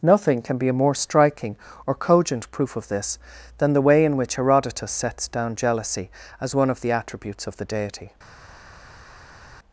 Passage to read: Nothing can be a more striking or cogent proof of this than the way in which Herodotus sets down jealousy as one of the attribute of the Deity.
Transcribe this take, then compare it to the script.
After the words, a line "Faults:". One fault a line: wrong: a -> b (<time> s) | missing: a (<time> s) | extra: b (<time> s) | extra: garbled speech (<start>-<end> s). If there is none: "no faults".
Nothing can be a more striking or cogent proof of this than the way in which Herodotus sets down jealousy as one of the attributes of the Deity.
Faults:
wrong: attribute -> attributes (6.9 s)